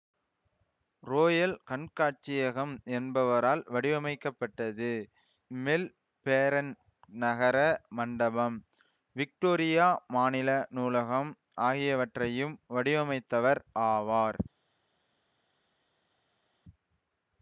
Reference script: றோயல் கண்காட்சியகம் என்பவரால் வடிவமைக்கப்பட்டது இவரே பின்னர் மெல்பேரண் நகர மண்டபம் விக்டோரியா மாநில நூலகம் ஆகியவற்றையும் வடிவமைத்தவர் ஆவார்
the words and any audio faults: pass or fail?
fail